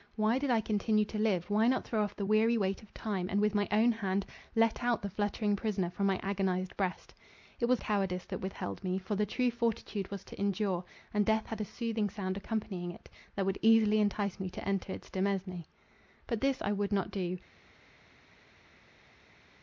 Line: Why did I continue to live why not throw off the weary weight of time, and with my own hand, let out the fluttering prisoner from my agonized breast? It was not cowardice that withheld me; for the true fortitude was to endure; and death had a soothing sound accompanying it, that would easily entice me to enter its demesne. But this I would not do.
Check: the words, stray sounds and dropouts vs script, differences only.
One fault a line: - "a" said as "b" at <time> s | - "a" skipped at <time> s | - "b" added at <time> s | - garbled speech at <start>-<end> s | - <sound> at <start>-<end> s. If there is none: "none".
- "not" skipped at 7.8 s